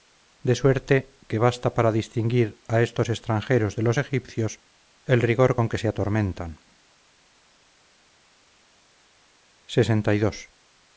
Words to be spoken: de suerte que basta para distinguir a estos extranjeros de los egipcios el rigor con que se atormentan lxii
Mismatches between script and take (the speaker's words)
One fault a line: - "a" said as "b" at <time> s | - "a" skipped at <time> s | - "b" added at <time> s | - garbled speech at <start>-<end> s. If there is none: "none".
none